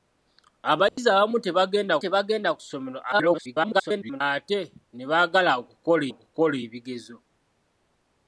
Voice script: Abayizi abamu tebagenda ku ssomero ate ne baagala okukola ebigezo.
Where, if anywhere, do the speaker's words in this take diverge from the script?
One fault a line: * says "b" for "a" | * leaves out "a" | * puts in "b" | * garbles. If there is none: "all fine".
* puts in "tebagenda"
* garbles
* puts in "okukola"